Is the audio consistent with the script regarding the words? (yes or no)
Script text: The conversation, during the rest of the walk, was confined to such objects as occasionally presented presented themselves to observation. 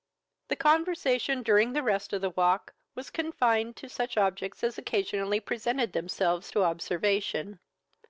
no